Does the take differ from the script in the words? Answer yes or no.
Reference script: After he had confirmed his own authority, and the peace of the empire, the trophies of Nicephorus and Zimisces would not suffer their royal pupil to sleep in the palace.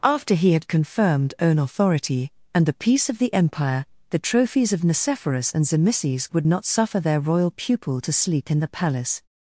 yes